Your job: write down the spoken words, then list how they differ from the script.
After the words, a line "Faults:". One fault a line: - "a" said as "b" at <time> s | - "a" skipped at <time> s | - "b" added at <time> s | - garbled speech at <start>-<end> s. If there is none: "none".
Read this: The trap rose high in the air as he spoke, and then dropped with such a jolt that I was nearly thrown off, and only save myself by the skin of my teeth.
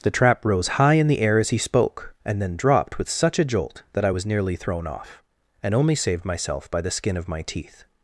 The trap rose high in the air as he spoke, and then dropped with such a jolt that I was nearly thrown off, and only saved myself by the skin of my teeth.
Faults:
- "save" said as "saved" at 6.0 s